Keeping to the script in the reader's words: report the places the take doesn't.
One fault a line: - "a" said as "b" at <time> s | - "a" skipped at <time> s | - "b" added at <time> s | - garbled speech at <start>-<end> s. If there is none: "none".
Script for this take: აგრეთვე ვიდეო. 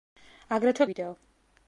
none